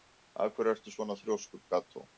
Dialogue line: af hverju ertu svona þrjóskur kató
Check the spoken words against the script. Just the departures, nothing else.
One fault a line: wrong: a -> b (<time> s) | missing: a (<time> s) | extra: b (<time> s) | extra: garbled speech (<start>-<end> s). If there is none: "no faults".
no faults